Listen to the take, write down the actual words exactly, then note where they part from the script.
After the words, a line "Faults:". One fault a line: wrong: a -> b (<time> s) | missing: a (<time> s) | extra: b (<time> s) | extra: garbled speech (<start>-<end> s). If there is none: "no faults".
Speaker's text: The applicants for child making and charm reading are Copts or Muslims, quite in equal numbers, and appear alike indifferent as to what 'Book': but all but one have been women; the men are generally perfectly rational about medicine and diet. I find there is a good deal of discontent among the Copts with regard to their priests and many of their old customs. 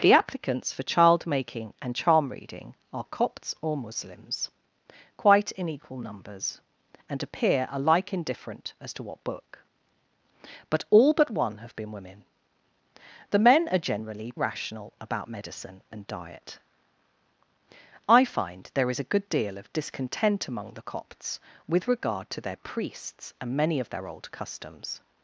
The applicants for child making and charm reading are Copts or Muslims, quite in equal numbers, and appear alike indifferent as to what 'Book': but all but one have been women; the men are generally rational about medicine and diet. I find there is a good deal of discontent among the Copts with regard to their priests and many of their old customs.
Faults:
missing: perfectly (14.3 s)